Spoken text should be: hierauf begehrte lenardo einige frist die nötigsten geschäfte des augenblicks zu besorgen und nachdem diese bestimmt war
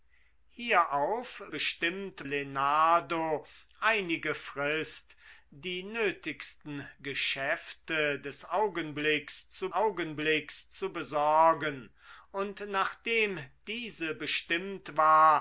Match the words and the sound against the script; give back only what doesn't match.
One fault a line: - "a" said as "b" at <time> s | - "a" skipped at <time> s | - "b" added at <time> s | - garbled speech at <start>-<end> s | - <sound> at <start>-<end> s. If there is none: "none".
- "begehrte" said as "bestimmt" at 1.5 s
- "augenblicks zu" added at 9.7 s